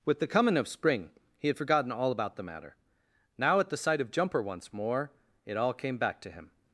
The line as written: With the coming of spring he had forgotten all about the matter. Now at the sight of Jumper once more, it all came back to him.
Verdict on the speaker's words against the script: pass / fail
pass